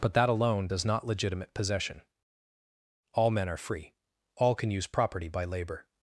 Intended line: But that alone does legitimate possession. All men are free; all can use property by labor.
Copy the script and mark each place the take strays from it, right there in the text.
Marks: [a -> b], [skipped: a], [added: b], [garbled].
But that alone does [added: not] legitimate possession. All men are free; all can use property by labor.